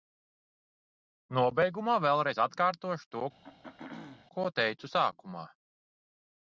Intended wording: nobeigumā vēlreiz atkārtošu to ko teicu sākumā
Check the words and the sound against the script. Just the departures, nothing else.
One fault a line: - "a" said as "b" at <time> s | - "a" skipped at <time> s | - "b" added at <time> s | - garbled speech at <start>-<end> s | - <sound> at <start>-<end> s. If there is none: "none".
- throat clearing at 3.4-4.3 s